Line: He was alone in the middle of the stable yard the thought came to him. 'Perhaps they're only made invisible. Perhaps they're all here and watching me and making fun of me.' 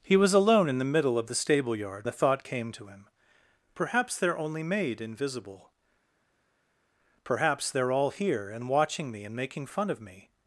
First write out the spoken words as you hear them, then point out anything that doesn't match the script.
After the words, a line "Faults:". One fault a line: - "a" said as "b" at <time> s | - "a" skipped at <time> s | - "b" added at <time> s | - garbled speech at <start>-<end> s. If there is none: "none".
He was alone in the middle of the stable yard the thought came to him. 'Perhaps they're only made invisible. Perhaps they're all here and watching me and making fun of me.'
Faults:
none